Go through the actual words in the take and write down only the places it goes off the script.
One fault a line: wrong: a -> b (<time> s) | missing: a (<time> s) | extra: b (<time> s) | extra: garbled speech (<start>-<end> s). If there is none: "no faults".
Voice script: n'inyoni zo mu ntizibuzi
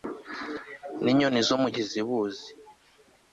no faults